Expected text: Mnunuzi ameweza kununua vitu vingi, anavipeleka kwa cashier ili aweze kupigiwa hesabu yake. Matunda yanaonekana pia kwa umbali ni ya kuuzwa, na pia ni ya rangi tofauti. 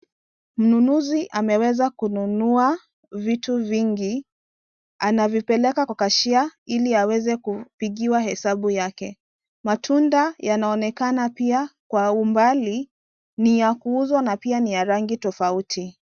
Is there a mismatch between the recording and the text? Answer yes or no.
no